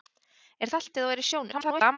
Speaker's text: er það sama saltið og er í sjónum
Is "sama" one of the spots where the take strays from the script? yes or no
yes